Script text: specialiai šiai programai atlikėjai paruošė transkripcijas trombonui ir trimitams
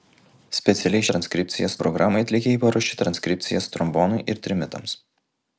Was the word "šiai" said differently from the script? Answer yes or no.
yes